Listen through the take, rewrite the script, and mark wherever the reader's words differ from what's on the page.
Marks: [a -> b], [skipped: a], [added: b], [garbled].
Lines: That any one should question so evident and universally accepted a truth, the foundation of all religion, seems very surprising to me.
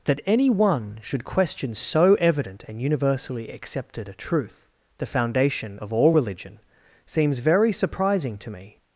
That any one should question so evident and universally accepted a truth, the foundation of all religion, seems very surprising to me.